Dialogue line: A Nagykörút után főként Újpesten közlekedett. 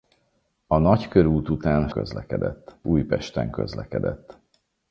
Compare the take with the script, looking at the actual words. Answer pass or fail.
fail